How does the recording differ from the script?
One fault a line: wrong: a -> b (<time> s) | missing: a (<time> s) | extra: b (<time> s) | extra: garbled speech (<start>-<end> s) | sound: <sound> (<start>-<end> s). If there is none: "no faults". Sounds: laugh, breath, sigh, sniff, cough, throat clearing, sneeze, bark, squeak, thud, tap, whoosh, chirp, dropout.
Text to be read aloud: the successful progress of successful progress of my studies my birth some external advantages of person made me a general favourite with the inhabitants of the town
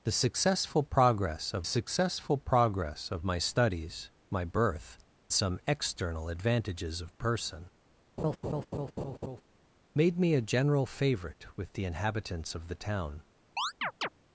sound: laugh (8.2-9.4 s)
sound: chirp (13.6-14.1 s)